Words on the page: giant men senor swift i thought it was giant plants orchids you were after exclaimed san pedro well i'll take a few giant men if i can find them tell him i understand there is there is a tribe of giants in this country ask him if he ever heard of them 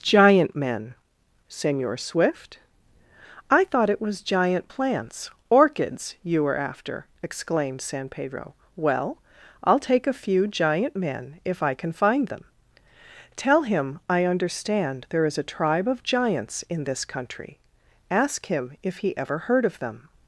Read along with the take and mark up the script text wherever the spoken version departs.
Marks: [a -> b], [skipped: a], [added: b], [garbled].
giant men senor swift i thought it was giant plants orchids you were after exclaimed san pedro well i'll take a few giant men if i can find them tell him i understand there is [skipped: there is] a tribe of giants in this country ask him if he ever heard of them